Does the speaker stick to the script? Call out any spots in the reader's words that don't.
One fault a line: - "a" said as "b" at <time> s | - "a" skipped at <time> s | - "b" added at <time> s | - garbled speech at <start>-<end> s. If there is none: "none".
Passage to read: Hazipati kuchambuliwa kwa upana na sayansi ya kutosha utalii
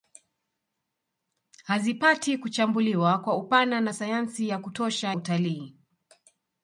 none